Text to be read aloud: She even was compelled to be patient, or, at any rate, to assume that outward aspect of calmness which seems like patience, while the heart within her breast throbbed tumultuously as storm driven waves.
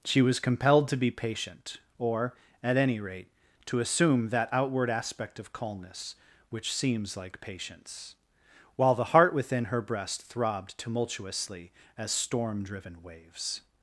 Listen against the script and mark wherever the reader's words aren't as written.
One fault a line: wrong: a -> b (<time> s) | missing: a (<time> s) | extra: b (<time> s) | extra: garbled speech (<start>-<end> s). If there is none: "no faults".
missing: even (0.2 s)